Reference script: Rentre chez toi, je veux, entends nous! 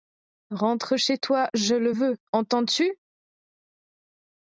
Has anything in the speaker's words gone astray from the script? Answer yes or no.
yes